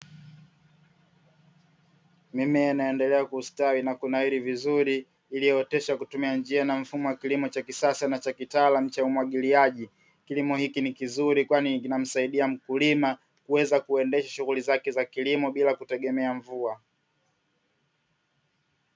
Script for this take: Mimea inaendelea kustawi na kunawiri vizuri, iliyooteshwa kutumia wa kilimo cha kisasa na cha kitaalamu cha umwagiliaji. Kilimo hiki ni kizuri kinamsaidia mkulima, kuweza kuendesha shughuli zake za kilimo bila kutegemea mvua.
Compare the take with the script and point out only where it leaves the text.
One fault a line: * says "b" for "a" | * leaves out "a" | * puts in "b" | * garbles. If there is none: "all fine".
* puts in "njia na mfumo"
* puts in "kwani"